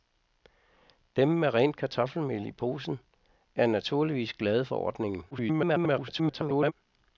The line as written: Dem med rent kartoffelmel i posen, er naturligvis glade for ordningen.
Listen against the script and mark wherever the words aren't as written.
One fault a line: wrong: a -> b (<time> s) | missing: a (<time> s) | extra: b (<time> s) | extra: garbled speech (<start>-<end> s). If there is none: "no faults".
extra: garbled speech (5.3-6.7 s)